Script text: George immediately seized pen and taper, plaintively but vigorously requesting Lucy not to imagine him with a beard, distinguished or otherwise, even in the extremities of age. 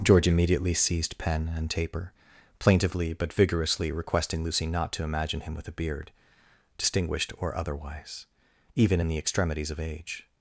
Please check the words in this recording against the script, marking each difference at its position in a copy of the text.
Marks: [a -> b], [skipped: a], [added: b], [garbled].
George immediately seized pen and taper, plaintively but vigorously requesting Lucy not to imagine him with a beard, distinguished or otherwise, even in the extremities of age.